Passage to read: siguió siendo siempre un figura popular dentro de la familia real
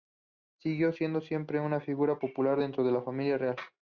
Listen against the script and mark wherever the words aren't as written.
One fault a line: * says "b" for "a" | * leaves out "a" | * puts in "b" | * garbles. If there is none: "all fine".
* says "una" for "un"